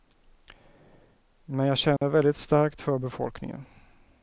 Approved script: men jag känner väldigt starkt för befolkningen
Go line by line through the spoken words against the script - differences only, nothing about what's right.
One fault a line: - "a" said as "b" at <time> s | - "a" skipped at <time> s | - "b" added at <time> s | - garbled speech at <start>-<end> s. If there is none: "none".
none